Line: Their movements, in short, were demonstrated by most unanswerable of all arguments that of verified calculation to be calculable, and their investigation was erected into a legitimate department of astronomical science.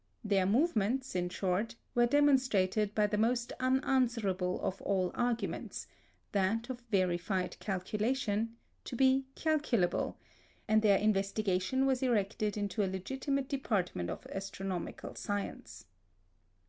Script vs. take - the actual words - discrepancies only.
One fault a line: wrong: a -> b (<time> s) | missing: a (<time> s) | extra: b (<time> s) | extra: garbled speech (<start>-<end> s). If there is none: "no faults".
extra: the (3.0 s)